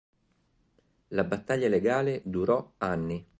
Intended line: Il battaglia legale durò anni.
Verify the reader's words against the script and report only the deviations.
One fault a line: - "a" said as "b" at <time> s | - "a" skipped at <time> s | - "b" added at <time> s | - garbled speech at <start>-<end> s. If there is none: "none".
- "Il" said as "La" at 1.1 s